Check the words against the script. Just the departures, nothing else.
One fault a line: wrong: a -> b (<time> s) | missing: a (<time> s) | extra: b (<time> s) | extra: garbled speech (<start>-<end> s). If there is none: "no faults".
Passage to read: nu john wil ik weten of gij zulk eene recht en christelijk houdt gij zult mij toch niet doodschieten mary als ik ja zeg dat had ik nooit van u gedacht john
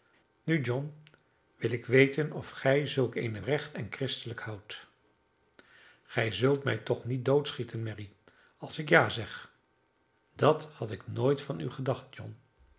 no faults